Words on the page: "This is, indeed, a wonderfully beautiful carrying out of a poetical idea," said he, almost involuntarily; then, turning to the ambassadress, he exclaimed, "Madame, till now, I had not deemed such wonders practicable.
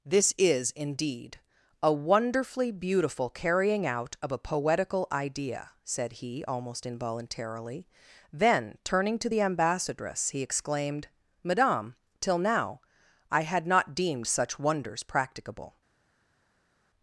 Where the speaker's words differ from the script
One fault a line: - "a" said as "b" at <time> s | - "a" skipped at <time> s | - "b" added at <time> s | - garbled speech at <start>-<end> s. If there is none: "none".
none